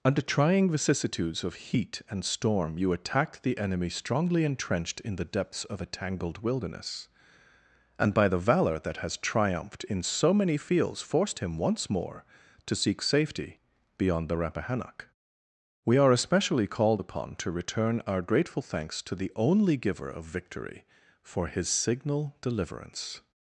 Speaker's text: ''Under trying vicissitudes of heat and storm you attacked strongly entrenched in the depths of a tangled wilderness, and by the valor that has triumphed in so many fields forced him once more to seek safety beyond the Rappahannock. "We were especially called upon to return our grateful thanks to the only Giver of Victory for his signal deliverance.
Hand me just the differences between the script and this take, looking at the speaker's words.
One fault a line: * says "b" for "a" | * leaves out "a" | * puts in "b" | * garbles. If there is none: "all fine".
* puts in "the enemy"
* says "are" for "were"